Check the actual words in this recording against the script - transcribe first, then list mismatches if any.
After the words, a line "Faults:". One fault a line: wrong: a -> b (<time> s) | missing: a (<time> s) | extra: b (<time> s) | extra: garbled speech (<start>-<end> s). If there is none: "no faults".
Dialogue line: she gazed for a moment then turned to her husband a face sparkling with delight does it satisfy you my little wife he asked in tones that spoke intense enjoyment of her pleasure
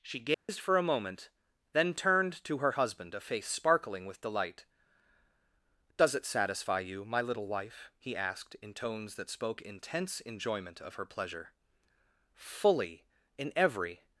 she gazed for a moment then turned to her husband a face sparkling with delight does it satisfy you my little wife he asked in tones that spoke intense enjoyment of her pleasure fully in every
Faults:
extra: fully in every (12.3 s)